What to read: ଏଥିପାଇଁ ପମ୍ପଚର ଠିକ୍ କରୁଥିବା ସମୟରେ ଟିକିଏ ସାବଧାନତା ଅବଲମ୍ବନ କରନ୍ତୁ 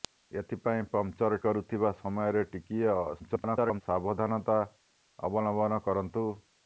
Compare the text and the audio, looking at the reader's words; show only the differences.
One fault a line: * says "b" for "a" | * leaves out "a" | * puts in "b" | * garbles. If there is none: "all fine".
* leaves out "ଠିକ୍"
* garbles